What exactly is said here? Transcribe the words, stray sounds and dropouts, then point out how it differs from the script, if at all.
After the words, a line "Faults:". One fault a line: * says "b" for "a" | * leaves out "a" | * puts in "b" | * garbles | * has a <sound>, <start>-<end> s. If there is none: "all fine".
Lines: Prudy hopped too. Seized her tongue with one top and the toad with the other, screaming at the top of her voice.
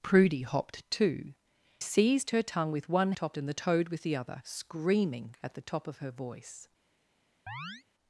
Prudy hopped too. Seized her tongue with one top and the toad with the other, screaming at the top of her voice.
Faults:
* has a chirp, 7.5-7.8 s